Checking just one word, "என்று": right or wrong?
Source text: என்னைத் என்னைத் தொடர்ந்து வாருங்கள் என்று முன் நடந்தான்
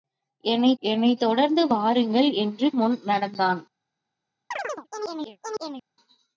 right